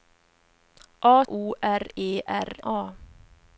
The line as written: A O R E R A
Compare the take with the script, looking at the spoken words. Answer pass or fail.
pass